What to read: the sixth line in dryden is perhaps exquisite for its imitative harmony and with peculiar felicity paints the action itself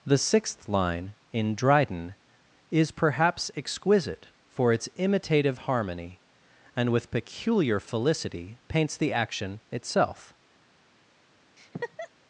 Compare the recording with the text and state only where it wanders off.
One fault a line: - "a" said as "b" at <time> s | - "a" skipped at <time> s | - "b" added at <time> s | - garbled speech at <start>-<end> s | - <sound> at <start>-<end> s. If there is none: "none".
- laugh at 11.6-12.1 s